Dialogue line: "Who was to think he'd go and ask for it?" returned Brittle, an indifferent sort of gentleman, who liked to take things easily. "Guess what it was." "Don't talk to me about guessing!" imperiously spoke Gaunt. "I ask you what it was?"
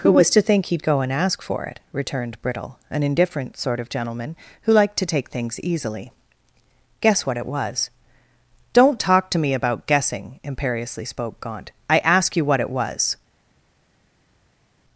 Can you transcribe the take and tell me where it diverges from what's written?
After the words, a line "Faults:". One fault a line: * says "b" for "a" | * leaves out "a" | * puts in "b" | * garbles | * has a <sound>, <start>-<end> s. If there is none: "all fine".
"Who was to think he'd go and ask for it?" returned Brittle, an indifferent sort of gentleman, who liked to take things easily. "Guess what it was." "Don't talk to me about guessing!" imperiously spoke Gaunt. "I ask you what it was?"
Faults:
all fine